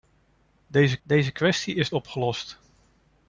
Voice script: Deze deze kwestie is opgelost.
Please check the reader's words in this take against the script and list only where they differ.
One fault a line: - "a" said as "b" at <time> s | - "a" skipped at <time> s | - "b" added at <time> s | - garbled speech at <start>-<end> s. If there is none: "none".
none